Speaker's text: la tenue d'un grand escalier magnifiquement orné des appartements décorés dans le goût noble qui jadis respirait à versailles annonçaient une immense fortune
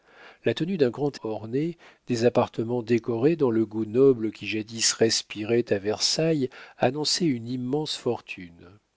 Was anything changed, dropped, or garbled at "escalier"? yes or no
yes